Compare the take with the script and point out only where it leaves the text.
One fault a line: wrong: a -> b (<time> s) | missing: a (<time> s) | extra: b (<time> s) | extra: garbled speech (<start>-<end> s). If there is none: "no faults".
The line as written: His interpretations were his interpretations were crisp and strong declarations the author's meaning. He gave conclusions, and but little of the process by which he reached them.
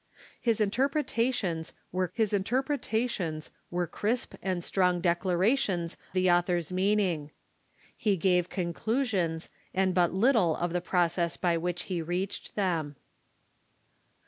no faults